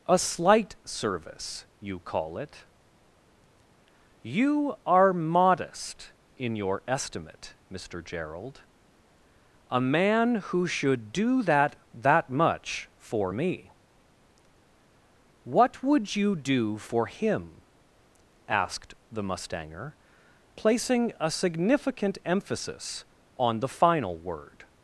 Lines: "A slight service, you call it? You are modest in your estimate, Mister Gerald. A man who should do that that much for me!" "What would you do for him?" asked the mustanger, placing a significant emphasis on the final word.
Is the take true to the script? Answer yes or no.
yes